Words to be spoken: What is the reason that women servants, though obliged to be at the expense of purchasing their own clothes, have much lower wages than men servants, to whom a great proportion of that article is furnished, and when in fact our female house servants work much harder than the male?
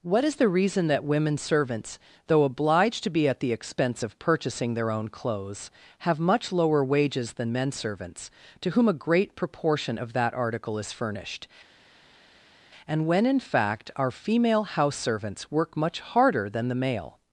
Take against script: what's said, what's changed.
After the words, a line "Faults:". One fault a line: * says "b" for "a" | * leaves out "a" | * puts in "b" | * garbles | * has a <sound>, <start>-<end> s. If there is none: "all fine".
What is the reason that women servants, though obliged to be at the expense of purchasing their own clothes, have much lower wages than men servants, to whom a great proportion of that article is furnished, and when in fact our female house servants work much harder than the male?
Faults:
all fine